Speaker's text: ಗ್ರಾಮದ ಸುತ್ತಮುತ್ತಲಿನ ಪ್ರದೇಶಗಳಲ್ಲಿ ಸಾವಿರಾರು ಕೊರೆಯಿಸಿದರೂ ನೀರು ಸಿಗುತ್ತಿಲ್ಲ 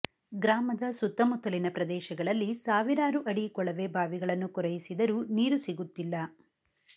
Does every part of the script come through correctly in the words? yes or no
no